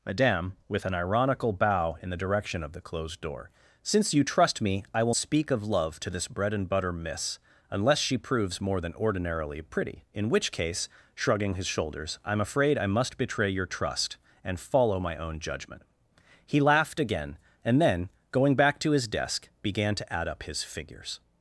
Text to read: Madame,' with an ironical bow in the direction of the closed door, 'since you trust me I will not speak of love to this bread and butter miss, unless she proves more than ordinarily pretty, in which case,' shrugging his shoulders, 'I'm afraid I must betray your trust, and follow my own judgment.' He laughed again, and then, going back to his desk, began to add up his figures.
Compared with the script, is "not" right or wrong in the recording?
wrong